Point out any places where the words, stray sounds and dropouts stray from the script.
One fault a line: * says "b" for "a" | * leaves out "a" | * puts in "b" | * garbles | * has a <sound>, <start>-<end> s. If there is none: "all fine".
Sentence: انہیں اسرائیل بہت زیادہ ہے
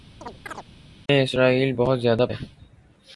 * has a chirp, 0.2-0.7 s